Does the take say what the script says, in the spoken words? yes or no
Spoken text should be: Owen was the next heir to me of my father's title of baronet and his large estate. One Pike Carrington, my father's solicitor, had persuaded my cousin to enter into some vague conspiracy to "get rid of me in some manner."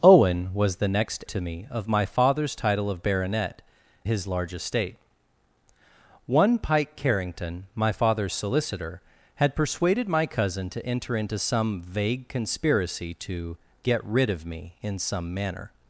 no